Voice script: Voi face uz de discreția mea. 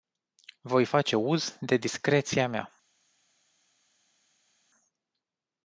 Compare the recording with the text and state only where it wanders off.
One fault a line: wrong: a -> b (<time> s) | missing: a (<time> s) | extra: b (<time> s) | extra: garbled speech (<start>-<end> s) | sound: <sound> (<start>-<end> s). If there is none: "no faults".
no faults